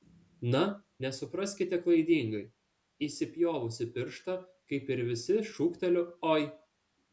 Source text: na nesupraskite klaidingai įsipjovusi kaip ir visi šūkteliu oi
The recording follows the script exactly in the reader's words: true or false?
false